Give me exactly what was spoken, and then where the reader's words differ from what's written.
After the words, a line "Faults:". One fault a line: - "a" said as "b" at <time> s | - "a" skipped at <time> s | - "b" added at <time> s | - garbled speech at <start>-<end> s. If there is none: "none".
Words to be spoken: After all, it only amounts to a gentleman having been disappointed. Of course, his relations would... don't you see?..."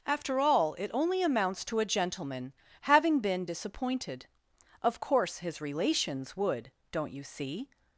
After all, it only amounts to a gentleman having been disappointed. Of course, his relations would... don't you see?..."
Faults:
none